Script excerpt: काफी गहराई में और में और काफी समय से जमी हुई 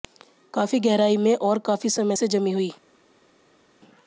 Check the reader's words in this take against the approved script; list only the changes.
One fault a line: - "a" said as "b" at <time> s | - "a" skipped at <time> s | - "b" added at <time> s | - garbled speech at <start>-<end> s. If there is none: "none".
- "में और" skipped at 1.6 s